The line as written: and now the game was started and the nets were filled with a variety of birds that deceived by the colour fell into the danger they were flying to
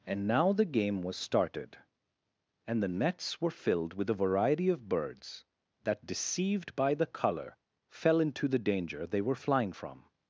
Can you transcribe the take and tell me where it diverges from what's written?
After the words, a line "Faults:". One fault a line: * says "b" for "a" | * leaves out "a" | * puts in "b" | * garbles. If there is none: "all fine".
and now the game was started and the nets were filled with a variety of birds that deceived by the colour fell into the danger they were flying from
Faults:
* says "from" for "to"